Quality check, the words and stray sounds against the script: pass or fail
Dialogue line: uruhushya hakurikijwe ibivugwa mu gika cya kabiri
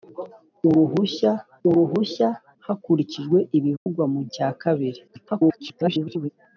fail